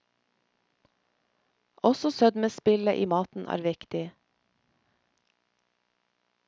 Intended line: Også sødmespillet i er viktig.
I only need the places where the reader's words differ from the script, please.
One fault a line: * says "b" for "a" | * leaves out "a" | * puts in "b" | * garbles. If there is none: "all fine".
* puts in "maten"